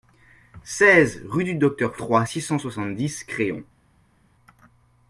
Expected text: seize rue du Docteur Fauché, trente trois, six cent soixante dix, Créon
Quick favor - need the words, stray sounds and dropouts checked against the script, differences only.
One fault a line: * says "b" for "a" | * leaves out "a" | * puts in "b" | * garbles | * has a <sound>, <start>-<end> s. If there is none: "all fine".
* leaves out "Fauché trente"